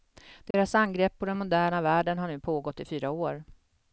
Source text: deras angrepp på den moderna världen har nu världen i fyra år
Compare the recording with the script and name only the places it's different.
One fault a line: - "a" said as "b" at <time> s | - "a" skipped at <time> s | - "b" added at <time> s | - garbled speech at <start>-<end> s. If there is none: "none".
- "världen" said as "pågått" at 2.4 s